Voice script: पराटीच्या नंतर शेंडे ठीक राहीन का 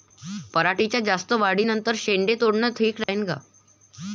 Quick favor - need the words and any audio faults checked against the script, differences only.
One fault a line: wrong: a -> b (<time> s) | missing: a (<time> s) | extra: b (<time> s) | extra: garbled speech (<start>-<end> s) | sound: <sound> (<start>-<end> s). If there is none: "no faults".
extra: जास्त वाढी (1.0 s)
extra: तोडनं (2.4 s)
sound: dropout (3.0-3.1 s)